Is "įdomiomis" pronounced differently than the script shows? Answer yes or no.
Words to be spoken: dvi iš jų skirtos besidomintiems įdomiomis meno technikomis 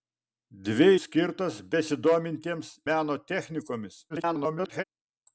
yes